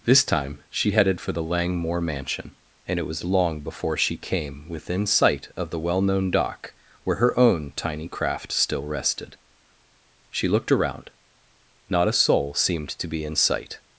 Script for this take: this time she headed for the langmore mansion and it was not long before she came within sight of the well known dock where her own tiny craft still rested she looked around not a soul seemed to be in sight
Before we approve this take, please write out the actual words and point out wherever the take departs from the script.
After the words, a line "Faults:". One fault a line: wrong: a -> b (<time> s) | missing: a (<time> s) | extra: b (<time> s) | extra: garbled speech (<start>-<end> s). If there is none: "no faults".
this time she headed for the langmore mansion and it was long before she came within sight of the well known dock where her own tiny craft still rested she looked around not a soul seemed to be in sight
Faults:
missing: not (3.2 s)